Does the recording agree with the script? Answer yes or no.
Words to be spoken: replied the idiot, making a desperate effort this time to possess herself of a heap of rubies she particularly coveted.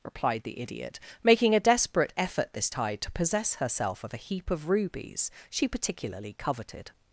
no